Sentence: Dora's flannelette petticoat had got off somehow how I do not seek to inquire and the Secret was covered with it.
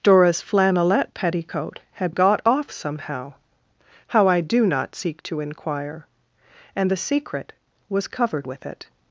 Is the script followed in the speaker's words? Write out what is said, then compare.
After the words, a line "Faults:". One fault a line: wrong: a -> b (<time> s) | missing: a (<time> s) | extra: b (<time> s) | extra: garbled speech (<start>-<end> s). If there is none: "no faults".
Dora's flannelette petticoat had got off somehow how I do not seek to inquire and the Secret was covered with it.
Faults:
no faults